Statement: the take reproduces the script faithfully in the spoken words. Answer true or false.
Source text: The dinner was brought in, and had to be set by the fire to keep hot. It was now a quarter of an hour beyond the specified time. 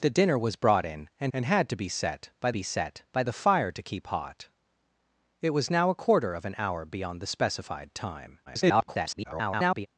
false